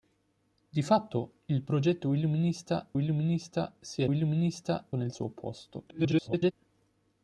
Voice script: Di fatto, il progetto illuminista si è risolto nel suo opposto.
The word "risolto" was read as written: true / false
false